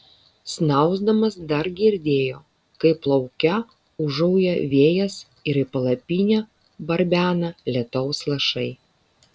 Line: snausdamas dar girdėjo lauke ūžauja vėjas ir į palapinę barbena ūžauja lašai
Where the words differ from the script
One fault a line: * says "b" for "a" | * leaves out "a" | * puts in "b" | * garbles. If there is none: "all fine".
* puts in "kaip"
* says "lietaus" for "ūžauja"